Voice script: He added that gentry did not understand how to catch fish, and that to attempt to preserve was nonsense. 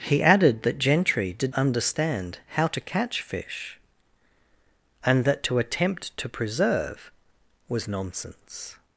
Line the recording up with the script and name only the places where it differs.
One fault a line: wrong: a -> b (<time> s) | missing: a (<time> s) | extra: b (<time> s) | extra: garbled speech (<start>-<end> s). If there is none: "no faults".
missing: not (1.5 s)